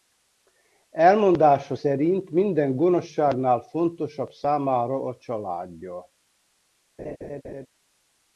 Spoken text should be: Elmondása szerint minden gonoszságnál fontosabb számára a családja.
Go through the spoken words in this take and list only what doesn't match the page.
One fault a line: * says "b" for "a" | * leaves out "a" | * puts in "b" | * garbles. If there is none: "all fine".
all fine